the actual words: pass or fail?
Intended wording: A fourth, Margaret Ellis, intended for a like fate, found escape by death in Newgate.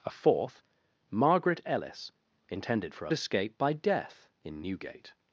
fail